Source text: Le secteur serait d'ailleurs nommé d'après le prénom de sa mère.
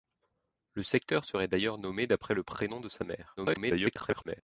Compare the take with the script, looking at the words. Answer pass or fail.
fail